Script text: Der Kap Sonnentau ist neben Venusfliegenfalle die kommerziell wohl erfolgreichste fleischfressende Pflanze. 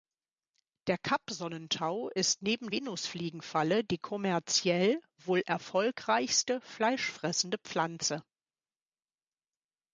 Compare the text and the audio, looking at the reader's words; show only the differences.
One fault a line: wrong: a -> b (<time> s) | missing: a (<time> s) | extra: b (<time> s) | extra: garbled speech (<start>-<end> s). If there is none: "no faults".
no faults